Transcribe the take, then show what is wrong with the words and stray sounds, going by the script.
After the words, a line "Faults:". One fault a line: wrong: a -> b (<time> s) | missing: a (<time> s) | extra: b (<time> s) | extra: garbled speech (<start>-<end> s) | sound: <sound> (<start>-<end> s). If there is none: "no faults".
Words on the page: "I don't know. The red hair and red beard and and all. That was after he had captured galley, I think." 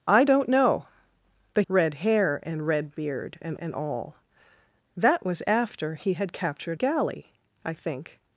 "I don't know. The red hair and red beard and and all. That was after he had captured galley, I think."
Faults:
no faults